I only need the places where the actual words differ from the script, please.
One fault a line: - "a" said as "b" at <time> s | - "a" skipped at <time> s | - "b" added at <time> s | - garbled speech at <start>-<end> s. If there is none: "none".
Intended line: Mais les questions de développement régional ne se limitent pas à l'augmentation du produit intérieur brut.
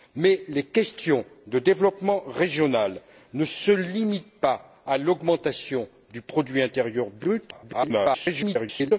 - garbled speech at 7.5-8.9 s